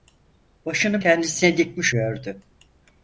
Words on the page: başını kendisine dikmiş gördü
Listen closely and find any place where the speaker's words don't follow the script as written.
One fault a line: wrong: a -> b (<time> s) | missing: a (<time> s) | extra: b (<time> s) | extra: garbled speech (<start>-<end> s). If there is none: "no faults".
no faults